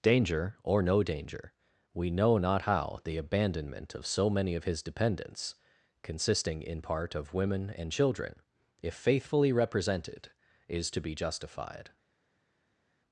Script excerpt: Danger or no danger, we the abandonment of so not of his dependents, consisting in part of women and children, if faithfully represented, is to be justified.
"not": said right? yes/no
no